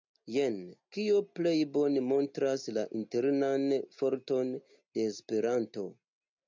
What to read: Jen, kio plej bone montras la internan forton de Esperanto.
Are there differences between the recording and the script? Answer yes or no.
no